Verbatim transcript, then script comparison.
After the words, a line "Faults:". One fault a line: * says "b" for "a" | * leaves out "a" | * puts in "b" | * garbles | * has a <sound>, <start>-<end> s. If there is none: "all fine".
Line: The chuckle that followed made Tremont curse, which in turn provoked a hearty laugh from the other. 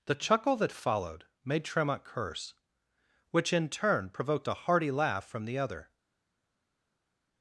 The chuckle that followed made Tremont curse, which in turn provoked a hearty laugh from the other.
Faults:
all fine